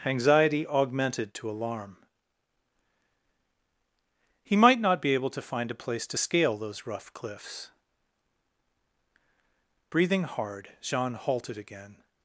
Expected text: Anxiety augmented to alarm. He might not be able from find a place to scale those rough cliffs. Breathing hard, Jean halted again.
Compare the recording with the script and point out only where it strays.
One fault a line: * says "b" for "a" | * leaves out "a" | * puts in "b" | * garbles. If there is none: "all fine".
* says "to" for "from"